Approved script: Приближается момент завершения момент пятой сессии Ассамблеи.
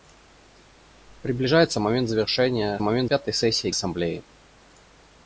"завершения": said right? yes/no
yes